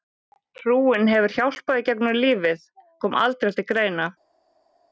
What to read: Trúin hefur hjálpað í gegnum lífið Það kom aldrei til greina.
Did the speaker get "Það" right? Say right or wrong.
wrong